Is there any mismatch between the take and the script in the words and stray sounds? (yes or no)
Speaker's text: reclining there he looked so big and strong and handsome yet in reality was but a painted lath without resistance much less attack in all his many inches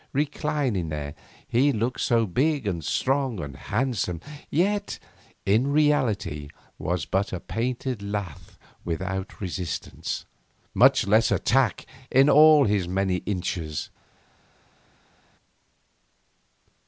no